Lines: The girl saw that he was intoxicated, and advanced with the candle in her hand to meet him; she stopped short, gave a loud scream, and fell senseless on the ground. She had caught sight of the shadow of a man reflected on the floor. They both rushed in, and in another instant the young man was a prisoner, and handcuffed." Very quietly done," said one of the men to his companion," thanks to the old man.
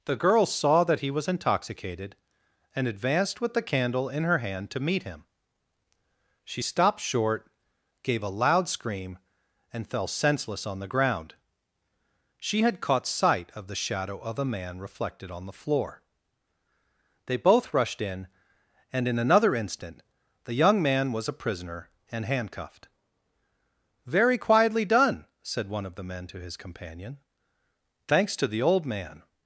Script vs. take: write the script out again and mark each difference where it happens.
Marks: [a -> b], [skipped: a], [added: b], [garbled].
The girl saw that he was intoxicated, and advanced with the candle in her hand to meet him; she stopped short, gave a loud scream, and fell senseless on the ground. She had caught sight of the shadow of a man reflected on the floor. They both rushed in, and in another instant the young man was a prisoner, and handcuffed." Very quietly done," said one of the men to his companion," thanks to the old man.